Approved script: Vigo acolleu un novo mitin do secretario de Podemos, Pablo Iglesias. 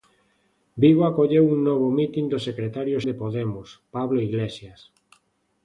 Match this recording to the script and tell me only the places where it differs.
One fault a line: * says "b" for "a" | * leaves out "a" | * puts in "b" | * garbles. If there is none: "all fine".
all fine